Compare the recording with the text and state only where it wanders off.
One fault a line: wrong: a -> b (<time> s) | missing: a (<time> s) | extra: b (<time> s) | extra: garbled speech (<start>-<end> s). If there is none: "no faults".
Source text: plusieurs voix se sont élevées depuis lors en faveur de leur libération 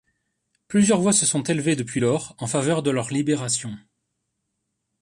no faults